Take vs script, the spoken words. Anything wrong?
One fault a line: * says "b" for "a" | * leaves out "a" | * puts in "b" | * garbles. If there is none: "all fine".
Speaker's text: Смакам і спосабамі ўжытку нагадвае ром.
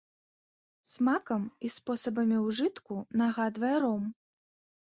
all fine